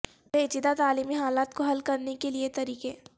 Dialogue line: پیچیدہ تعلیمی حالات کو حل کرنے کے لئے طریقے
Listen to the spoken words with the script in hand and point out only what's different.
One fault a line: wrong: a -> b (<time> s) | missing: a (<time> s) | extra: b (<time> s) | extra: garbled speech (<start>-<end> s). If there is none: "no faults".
no faults